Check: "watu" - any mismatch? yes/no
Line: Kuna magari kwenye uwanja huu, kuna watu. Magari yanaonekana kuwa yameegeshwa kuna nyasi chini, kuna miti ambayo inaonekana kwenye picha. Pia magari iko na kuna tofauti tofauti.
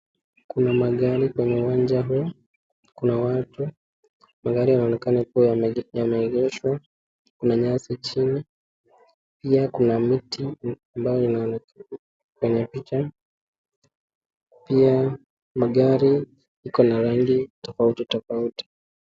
no